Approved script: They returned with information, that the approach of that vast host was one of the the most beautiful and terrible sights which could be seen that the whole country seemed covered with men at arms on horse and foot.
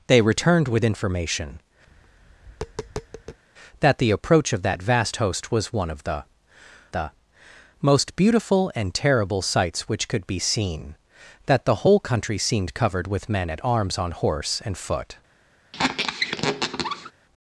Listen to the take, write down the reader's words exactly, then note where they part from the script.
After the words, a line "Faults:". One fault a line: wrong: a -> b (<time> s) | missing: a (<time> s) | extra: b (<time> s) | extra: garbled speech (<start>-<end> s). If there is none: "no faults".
They returned with information, that the approach of that vast host was one of the the most beautiful and terrible sights which could be seen that the whole country seemed covered with men at arms on horse and foot.
Faults:
no faults